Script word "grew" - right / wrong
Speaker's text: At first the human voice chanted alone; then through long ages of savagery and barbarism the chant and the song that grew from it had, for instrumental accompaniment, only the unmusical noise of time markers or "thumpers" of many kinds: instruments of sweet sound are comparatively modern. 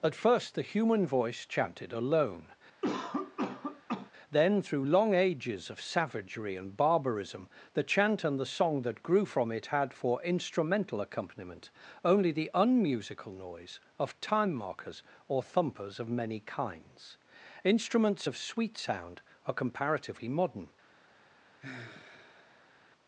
right